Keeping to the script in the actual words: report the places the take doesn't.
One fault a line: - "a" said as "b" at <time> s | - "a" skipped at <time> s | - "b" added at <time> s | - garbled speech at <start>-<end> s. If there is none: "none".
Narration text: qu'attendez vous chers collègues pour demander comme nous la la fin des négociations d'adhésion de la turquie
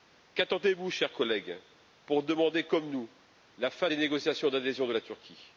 - "la" skipped at 3.7 s